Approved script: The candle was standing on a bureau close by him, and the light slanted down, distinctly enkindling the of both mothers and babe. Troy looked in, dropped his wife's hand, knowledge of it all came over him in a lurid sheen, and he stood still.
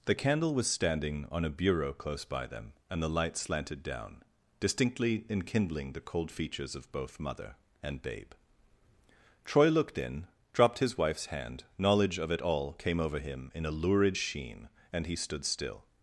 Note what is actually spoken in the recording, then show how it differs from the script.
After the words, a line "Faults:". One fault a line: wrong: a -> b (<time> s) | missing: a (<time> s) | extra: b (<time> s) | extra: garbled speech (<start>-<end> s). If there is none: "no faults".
The candle was standing on a bureau close by them, and the light slanted down, distinctly enkindling the cold features of both mother and babe. Troy looked in, dropped his wife's hand, knowledge of it all came over him in a lurid sheen, and he stood still.
Faults:
wrong: him -> them (2.5 s)
extra: cold features (6.0 s)
wrong: mothers -> mother (7.2 s)